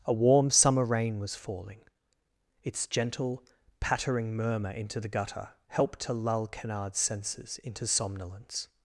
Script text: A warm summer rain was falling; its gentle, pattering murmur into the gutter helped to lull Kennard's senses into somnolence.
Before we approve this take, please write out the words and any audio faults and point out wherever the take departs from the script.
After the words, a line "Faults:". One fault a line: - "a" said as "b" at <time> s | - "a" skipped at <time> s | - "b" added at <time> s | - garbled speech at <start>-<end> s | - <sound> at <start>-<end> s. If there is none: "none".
A warm summer rain was falling; its gentle, pattering murmur into the gutter helped to lull Kennard's senses into somnolence.
Faults:
none